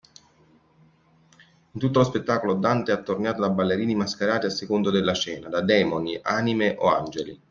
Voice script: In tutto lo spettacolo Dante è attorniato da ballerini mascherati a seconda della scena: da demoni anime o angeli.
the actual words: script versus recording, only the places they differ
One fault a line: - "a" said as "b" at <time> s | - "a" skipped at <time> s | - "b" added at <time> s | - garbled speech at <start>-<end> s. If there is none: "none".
none